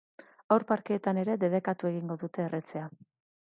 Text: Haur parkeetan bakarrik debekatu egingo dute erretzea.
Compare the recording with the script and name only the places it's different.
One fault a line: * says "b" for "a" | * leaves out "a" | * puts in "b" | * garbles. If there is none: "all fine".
* says "ere" for "bakarrik"